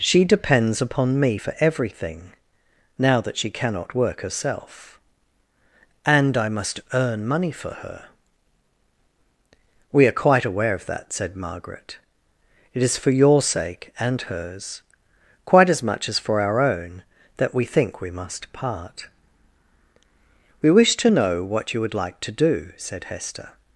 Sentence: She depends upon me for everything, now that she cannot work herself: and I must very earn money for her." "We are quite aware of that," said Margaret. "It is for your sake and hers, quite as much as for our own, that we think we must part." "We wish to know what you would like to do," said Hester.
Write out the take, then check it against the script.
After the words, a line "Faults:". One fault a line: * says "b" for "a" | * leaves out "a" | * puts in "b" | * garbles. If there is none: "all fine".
She depends upon me for everything, now that she cannot work herself: and I must earn money for her." "We are quite aware of that," said Margaret. "It is for your sake and hers, quite as much as for our own, that we think we must part." "We wish to know what you would like to do," said Hester.
Faults:
* leaves out "very"